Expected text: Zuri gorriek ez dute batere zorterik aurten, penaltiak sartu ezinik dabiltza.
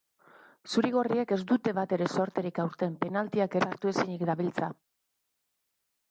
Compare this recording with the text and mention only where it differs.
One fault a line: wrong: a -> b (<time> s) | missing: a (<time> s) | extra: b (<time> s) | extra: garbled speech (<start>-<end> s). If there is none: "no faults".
no faults